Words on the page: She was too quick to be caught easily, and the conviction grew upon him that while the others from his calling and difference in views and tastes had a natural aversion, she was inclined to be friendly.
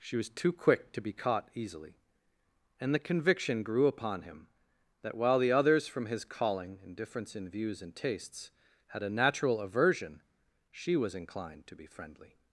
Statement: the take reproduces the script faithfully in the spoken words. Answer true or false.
true